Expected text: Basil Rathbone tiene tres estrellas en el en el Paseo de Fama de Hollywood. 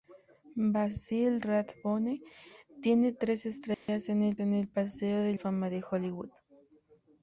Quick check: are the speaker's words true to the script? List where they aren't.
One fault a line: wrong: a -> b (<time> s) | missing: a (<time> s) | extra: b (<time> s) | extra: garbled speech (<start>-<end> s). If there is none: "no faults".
no faults